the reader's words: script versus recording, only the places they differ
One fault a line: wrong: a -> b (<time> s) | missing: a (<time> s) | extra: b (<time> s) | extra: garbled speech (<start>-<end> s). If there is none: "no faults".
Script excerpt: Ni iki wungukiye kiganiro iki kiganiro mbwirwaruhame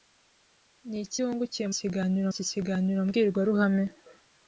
no faults